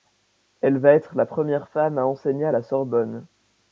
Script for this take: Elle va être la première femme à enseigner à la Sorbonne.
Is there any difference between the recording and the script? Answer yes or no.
no